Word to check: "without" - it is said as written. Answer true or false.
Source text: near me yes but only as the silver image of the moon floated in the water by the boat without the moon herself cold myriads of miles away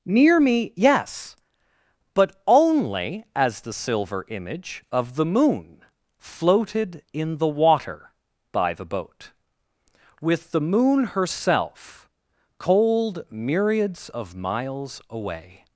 false